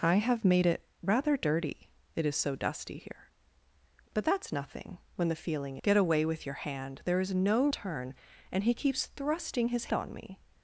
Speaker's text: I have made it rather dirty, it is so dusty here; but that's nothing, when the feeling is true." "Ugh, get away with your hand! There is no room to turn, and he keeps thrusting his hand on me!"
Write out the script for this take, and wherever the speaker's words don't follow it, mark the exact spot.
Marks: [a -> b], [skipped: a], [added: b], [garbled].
I have made it rather dirty, it is so dusty here; but that's nothing, when the feeling [skipped: is true." "Ugh,] get away with your hand! There is no [skipped: room to] turn, and he keeps thrusting his [skipped: hand] on me!"